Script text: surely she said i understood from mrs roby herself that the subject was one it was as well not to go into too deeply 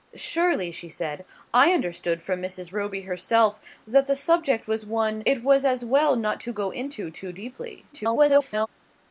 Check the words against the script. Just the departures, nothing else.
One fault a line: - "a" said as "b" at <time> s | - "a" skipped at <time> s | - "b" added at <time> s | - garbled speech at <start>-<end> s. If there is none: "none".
- garbled speech at 7.9-8.7 s